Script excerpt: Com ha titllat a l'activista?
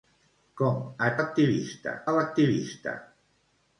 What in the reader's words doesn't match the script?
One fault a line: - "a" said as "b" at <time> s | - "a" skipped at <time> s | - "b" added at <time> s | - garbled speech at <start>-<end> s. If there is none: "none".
- "titllat" said as "l'activista" at 1.2 s